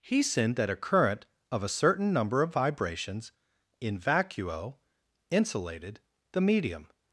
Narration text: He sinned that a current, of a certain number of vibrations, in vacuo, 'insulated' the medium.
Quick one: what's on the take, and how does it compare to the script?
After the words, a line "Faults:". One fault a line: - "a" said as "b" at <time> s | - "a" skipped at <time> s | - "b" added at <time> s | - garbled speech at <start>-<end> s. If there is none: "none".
He sinned that a current, of a certain number of vibrations, in vacuo, 'insulated' the medium.
Faults:
none